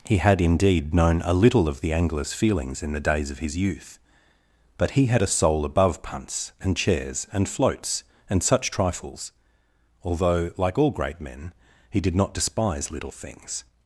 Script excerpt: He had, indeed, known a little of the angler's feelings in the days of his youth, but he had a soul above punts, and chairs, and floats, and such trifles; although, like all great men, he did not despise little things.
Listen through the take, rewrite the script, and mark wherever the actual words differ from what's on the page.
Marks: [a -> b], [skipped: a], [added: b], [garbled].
He had, indeed, known a little of the angler's feelings in the days of his youth, but he had a soul above punts, and chairs, and floats, and such trifles; although, like all great men, he did not despise little things.